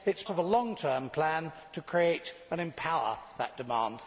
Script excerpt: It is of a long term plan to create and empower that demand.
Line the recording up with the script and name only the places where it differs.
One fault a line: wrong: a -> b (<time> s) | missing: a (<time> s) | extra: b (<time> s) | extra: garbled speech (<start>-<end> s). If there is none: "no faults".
no faults